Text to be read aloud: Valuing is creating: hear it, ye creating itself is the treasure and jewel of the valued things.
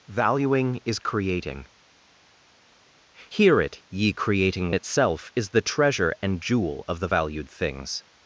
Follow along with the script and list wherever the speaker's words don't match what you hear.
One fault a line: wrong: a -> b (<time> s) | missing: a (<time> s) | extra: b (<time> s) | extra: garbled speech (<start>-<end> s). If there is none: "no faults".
no faults